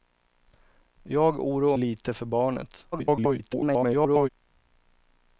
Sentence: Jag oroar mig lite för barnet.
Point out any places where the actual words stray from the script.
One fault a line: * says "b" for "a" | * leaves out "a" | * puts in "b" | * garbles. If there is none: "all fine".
* leaves out "mig"
* garbles